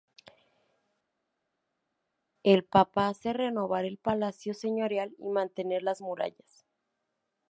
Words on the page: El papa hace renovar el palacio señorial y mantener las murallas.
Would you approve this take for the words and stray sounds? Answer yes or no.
yes